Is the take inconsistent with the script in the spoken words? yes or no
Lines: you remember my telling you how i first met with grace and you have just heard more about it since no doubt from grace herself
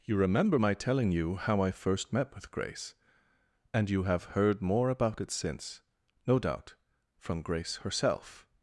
yes